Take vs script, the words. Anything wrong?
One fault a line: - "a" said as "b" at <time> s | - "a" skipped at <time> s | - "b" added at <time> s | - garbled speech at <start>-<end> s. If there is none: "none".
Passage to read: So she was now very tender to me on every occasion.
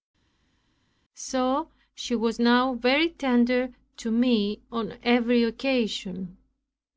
none